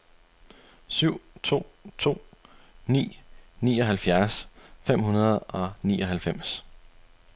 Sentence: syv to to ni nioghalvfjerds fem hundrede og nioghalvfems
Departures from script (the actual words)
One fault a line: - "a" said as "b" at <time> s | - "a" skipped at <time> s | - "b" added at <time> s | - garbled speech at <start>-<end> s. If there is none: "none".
none